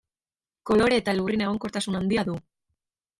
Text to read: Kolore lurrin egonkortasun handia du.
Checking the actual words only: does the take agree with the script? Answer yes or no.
no